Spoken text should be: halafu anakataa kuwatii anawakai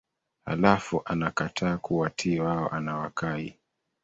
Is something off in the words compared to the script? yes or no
yes